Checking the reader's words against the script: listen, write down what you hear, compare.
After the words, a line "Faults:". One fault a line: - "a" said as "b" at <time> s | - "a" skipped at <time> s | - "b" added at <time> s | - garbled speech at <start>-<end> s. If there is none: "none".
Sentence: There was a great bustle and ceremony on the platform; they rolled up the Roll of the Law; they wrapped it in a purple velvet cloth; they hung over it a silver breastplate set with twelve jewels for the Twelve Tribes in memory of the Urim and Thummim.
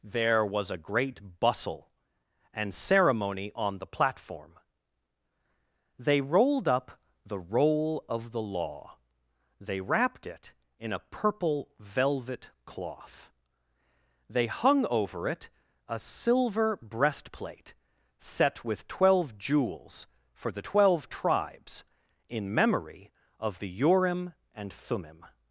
There was a great bustle and ceremony on the platform; they rolled up the Roll of the Law; they wrapped it in a purple velvet cloth; they hung over it a silver breastplate set with twelve jewels for the Twelve Tribes in memory of the Urim and Thummim.
Faults:
none